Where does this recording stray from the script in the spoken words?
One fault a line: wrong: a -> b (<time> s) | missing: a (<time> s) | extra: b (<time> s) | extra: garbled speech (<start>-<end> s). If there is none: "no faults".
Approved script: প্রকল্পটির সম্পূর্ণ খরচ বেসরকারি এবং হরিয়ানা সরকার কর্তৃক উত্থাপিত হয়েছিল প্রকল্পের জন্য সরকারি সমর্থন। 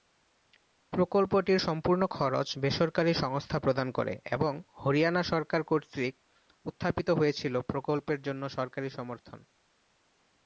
extra: সংস্থা প্রদান করে (3.1 s)